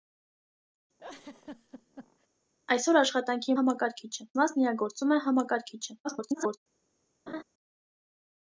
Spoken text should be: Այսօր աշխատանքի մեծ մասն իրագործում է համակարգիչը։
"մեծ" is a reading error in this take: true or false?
true